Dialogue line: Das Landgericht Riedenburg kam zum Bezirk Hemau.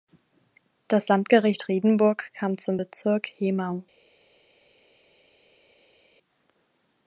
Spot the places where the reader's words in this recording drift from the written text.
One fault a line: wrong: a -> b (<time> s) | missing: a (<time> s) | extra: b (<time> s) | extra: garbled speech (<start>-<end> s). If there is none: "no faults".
no faults